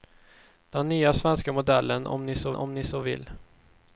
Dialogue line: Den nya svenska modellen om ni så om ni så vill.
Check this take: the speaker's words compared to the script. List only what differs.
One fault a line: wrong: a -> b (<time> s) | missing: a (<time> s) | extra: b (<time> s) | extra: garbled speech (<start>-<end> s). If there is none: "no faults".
no faults